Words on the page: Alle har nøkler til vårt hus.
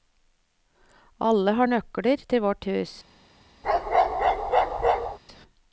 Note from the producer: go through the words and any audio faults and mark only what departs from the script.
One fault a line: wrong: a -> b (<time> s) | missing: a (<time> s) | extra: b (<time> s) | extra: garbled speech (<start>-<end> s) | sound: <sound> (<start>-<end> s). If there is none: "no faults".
sound: bark (3.6-5.2 s)